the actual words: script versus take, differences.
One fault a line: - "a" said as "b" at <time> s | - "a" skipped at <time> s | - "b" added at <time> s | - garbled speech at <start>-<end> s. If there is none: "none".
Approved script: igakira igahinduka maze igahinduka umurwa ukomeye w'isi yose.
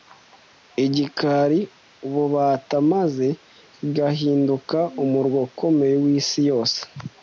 - "igahinduka" said as "ububata" at 2.0 s